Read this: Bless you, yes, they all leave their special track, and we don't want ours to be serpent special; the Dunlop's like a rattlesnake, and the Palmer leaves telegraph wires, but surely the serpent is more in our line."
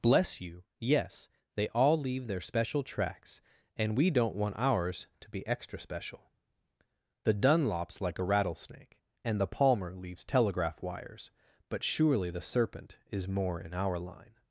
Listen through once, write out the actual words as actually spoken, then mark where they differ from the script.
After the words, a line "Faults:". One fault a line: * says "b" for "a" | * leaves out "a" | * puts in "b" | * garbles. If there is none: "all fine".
Bless you, yes, they all leave their special tracks, and we don't want ours to be extra special; the Dunlop's like a rattlesnake, and the Palmer leaves telegraph wires, but surely the serpent is more in our line."
Faults:
* says "tracks" for "track"
* says "extra" for "serpent"